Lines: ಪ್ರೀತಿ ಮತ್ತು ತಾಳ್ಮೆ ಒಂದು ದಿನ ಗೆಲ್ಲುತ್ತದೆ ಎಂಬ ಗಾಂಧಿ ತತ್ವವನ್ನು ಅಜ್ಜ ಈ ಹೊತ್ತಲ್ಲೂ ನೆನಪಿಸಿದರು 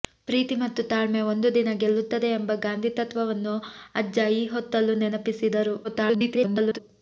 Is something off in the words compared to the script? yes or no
yes